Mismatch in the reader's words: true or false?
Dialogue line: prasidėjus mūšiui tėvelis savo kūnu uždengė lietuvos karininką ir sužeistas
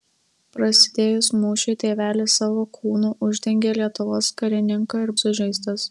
false